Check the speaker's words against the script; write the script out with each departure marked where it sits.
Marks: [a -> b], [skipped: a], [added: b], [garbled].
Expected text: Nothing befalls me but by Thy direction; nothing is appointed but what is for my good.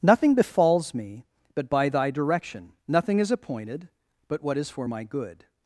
Nothing befalls me but by Thy direction; nothing is appointed but what is for my good.